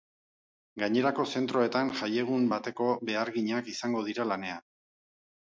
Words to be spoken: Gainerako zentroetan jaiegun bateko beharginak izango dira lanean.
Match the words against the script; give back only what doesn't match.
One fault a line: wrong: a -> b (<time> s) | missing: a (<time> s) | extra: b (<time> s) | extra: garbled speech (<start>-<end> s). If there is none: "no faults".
no faults